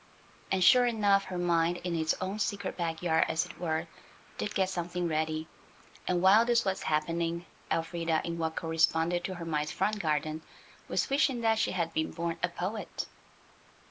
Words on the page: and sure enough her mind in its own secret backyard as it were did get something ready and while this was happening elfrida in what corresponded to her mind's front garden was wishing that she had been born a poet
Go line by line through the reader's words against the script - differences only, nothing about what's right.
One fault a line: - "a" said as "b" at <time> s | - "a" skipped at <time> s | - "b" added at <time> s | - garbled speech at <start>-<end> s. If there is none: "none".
none